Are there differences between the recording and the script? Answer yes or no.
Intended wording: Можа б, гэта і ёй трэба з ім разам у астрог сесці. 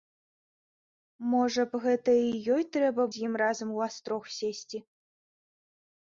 no